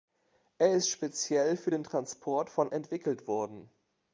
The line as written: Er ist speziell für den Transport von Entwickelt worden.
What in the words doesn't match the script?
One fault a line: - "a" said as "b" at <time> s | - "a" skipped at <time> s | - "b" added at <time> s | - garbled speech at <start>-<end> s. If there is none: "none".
none